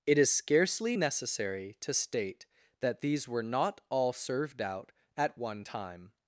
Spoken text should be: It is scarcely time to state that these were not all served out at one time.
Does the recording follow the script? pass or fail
fail